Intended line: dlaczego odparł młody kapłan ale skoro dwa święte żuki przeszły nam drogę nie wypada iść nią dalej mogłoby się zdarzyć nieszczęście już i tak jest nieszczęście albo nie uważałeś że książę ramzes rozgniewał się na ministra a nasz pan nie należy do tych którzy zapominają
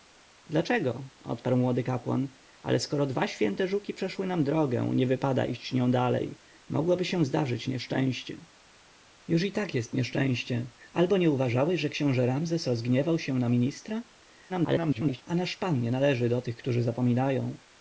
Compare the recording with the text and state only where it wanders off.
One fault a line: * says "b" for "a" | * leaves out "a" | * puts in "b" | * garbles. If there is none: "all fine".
* garbles